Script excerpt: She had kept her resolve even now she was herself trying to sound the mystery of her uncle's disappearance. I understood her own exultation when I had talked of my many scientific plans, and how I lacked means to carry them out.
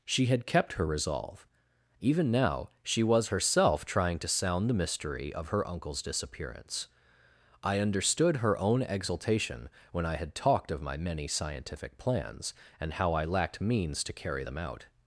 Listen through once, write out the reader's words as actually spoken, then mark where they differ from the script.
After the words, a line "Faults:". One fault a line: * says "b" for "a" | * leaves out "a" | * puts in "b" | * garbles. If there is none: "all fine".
She had kept her resolve even now she was herself trying to sound the mystery of her uncle's disappearance. I understood her own exultation when I had talked of my many scientific plans, and how I lacked means to carry them out.
Faults:
all fine